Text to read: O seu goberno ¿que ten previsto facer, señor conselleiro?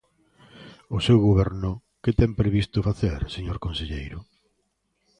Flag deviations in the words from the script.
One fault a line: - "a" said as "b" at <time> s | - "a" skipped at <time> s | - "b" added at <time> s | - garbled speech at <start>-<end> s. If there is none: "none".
none